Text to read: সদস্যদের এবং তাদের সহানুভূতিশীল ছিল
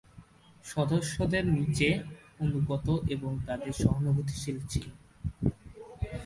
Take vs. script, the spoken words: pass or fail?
fail